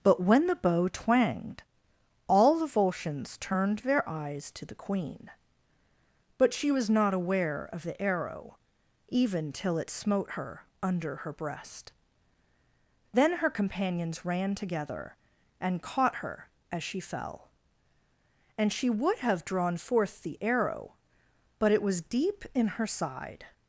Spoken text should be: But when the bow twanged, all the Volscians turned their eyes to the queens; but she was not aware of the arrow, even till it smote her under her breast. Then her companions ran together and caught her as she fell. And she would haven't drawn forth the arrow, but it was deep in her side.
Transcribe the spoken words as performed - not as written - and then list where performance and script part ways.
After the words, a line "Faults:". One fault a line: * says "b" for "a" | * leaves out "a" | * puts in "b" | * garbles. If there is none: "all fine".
But when the bow twanged, all the Volscians turned their eyes to the queen; but she was not aware of the arrow, even till it smote her under her breast. Then her companions ran together and caught her as she fell. And she would have drawn forth the arrow, but it was deep in her side.
Faults:
* says "queen" for "queens"
* says "have" for "haven't"